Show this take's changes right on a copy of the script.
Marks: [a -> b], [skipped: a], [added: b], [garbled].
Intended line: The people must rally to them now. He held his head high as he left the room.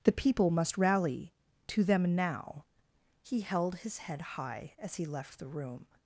The people must rally to them now. He held his head high as he left the room.